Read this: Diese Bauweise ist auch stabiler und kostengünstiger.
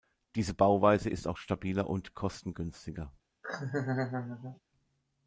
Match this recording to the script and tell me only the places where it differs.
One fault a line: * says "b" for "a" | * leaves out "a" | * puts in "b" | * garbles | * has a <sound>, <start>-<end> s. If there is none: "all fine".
* has a laugh, 3.4-4.6 s